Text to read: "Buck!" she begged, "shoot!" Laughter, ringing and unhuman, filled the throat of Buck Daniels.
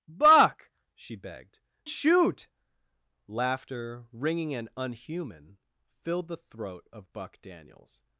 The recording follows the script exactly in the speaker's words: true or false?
true